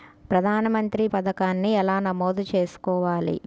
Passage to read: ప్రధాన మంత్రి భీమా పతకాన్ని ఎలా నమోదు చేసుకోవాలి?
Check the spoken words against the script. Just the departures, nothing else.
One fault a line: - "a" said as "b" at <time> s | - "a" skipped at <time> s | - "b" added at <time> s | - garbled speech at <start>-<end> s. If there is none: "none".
- "భీమా" skipped at 1.1 s